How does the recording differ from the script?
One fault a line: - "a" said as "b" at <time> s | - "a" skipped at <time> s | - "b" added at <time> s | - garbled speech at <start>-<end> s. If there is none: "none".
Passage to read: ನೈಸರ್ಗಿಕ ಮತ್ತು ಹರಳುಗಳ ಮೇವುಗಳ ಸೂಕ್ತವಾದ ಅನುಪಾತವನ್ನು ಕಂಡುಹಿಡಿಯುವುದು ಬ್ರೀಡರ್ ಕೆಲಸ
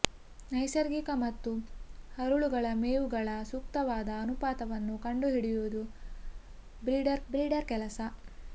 - "ಬ್ರೀಡರ್" added at 7.3 s